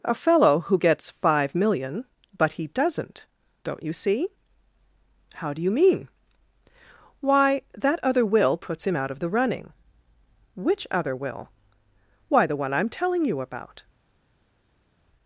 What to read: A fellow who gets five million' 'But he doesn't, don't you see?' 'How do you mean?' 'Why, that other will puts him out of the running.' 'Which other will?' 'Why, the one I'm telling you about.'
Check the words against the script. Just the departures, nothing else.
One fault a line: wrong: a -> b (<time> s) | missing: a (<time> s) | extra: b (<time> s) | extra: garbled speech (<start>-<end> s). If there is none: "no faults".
no faults